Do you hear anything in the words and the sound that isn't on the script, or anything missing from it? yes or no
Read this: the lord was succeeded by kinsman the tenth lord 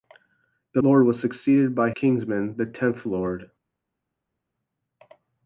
no